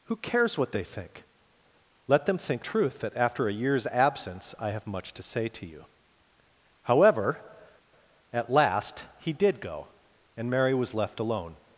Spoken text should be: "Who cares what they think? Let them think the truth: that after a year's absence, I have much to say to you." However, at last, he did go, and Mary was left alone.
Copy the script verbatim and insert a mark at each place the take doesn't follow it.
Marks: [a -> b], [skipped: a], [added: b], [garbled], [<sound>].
"Who cares what they think? Let them think [skipped: the] truth: that after a year's absence, I have much to say to you." However, at last, he did go, and Mary was left alone.